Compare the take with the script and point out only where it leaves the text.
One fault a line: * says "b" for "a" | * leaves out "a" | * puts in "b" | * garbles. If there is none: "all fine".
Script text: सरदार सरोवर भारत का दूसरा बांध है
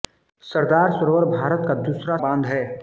all fine